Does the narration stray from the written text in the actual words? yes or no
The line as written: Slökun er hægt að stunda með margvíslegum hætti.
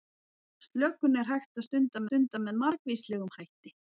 yes